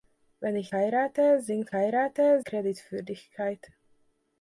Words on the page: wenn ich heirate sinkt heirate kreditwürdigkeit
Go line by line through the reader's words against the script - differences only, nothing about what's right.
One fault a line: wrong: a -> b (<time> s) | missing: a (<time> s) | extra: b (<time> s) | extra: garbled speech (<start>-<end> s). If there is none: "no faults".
no faults